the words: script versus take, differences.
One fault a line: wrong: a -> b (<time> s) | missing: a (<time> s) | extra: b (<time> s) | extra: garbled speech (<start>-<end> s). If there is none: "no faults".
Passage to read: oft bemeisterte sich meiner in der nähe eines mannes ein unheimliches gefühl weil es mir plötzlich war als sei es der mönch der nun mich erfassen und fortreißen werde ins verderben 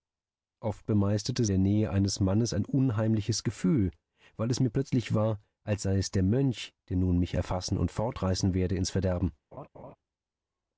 missing: sich meiner in (1.4 s)